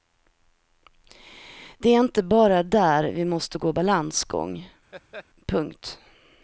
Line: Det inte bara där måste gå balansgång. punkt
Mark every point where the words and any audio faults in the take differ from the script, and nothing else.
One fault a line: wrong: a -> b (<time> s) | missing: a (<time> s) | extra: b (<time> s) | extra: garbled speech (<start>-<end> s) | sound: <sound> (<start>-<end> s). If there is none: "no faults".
extra: är (1.9 s)
extra: vi (3.0 s)
sound: laugh (4.9-5.3 s)